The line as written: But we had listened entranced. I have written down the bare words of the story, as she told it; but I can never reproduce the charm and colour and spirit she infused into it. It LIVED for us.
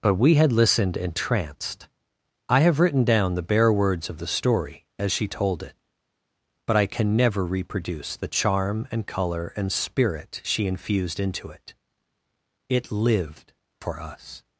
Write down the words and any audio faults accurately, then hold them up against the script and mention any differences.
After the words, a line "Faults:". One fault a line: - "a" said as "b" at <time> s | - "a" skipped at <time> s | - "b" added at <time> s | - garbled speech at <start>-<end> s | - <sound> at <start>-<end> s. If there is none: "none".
But we had listened entranced. I have written down the bare words of the story, as she told it; but I can never reproduce the charm and colour and spirit she infused into it. It LIVED for us.
Faults:
none